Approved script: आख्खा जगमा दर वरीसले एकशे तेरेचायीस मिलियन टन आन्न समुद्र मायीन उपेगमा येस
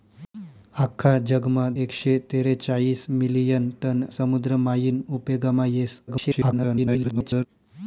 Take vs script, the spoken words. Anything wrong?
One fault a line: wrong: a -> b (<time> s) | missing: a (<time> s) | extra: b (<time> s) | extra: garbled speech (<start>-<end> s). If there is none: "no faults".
missing: दर वरीसले (1.6 s)
missing: आन्न (4.0 s)
extra: garbled speech (6.1-7.5 s)